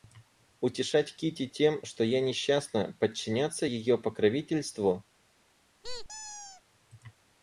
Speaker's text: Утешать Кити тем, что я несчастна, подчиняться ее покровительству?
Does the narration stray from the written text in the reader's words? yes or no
no